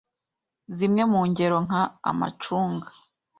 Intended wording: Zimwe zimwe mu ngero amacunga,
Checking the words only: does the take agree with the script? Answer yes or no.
no